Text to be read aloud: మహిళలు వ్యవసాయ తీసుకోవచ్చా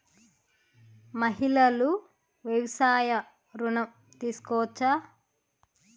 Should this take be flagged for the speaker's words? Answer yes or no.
yes